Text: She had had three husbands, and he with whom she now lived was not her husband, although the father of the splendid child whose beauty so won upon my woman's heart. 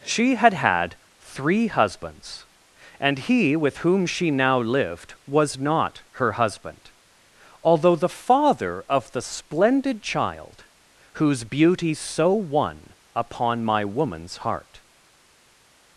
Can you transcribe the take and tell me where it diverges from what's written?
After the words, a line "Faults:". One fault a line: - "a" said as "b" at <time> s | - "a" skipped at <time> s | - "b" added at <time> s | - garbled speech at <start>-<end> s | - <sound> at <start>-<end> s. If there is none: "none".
She had had three husbands, and he with whom she now lived was not her husband, although the father of the splendid child whose beauty so won upon my woman's heart.
Faults:
none